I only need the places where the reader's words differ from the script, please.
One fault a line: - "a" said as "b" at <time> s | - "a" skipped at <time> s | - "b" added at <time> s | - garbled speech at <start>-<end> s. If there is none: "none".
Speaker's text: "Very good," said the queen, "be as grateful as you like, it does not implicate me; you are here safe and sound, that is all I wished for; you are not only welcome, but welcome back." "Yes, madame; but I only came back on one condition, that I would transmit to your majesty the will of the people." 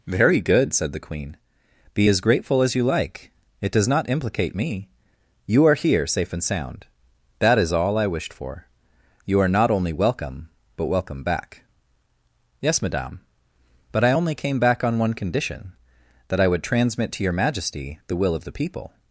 none